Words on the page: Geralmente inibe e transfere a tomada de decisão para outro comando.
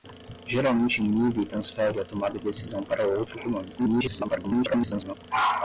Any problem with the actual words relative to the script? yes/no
yes